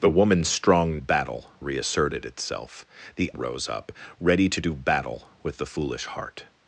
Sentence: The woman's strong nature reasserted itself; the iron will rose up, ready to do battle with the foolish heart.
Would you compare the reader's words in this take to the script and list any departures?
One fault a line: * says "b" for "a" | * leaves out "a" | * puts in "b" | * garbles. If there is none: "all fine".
* says "battle" for "nature"
* leaves out "iron will"